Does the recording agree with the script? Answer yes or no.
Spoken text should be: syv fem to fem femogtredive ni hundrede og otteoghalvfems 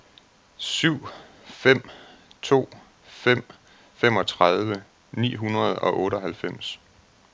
yes